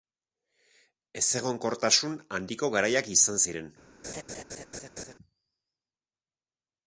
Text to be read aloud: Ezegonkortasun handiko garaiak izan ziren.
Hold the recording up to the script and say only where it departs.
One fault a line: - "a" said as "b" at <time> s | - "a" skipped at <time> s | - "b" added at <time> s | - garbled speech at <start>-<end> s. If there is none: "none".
none